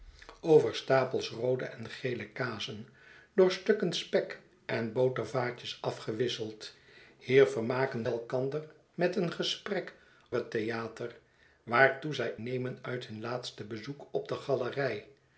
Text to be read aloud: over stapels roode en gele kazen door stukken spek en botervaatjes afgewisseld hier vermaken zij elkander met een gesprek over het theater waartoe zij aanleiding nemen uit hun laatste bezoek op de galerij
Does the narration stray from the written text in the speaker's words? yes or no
yes